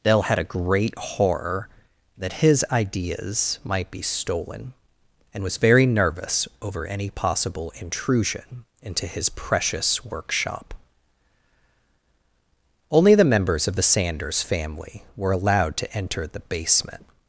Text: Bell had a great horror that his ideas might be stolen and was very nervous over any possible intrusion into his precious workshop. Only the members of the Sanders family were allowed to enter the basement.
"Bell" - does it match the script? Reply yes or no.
no